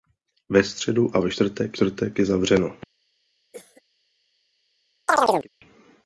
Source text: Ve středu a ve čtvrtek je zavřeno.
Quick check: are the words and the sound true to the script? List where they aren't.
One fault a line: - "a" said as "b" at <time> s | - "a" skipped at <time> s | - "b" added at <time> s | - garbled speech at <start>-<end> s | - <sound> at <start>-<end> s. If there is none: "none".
- "čtvrtek" added at 1.7 s
- cough at 3.5-3.8 s
- chirp at 5.1-5.5 s